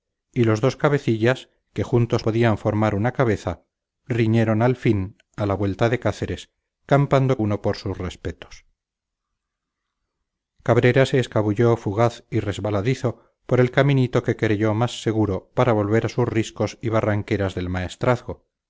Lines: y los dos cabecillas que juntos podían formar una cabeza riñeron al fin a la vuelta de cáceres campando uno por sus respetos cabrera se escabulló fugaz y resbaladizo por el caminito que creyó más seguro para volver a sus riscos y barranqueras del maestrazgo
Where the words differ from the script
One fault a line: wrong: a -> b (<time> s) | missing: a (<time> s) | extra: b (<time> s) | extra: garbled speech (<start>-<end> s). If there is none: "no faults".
no faults